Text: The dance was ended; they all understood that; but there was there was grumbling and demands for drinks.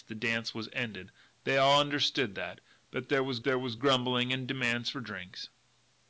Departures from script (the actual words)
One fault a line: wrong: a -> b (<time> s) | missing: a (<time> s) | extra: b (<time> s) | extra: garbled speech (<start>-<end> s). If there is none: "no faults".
no faults